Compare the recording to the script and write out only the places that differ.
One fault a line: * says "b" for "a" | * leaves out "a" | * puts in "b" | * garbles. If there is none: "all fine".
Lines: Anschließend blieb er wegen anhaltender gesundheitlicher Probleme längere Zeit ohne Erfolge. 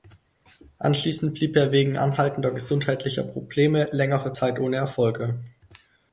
all fine